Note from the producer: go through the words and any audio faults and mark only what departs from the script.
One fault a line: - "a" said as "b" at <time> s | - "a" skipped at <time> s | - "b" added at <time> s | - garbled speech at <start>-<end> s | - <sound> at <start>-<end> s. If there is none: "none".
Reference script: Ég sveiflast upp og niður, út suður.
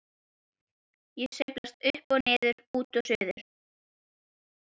- "og" added at 3.0 s